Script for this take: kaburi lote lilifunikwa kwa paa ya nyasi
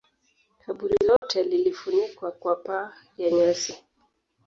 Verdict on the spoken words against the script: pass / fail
pass